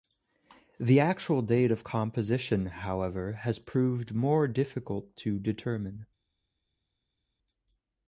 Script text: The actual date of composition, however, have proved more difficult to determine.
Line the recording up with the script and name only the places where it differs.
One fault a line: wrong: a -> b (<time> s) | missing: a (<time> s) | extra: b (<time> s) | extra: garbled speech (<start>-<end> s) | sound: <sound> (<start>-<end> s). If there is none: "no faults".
wrong: have -> has (3.3 s)